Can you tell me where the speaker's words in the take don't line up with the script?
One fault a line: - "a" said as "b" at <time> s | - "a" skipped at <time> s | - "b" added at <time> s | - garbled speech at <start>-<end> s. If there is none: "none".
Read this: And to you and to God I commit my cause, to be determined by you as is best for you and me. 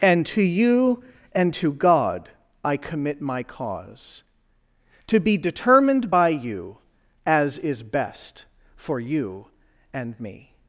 none